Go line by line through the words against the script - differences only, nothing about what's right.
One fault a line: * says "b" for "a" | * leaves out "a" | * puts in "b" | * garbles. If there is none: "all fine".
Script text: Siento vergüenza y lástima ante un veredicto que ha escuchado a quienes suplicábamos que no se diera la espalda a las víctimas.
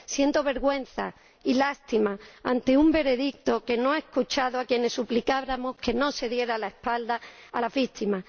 * puts in "no"